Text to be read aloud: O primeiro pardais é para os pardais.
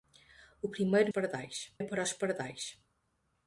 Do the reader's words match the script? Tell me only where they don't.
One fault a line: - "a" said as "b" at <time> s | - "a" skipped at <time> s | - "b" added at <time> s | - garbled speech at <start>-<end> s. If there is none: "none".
none